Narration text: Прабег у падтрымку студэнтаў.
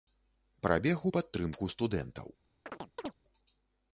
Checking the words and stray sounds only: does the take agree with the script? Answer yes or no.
no